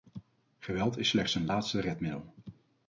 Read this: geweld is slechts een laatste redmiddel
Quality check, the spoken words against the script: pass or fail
pass